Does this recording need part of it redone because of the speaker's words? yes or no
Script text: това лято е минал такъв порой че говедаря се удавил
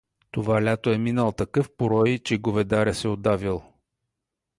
no